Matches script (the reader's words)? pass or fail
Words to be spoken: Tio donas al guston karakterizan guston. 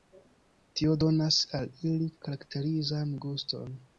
fail